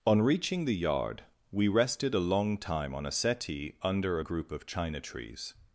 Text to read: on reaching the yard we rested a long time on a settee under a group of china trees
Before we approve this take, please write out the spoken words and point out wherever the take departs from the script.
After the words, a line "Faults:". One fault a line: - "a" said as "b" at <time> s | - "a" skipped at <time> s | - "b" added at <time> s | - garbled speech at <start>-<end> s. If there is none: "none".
on reaching the yard we rested a long time on a settee under a group of china trees
Faults:
none